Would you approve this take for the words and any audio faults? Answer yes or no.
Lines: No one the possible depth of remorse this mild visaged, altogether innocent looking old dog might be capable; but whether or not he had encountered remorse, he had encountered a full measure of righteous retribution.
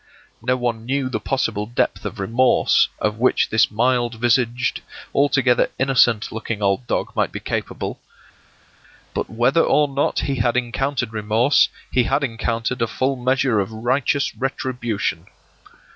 no